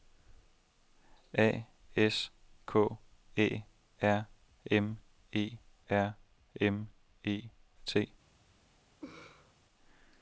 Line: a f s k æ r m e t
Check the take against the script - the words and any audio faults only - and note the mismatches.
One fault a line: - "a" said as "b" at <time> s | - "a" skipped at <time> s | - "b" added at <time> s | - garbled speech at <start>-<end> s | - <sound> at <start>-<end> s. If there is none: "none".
- "f" skipped at 1.7 s
- "r m e" added at 5.9 s
- laugh at 9.0-9.5 s